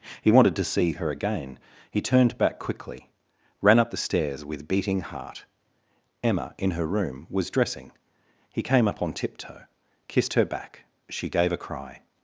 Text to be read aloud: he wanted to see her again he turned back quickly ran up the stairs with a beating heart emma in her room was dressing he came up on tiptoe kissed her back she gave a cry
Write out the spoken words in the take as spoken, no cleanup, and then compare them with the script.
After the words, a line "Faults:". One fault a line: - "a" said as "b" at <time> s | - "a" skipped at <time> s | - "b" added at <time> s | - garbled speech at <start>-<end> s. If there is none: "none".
he wanted to see her again he turned back quickly ran up the stairs with beating heart emma in her room was dressing he came up on tiptoe kissed her back she gave a cry
Faults:
- "a" skipped at 4.7 s